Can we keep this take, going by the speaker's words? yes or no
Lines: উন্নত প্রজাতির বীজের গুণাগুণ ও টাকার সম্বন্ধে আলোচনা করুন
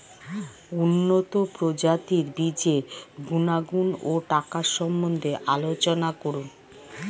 yes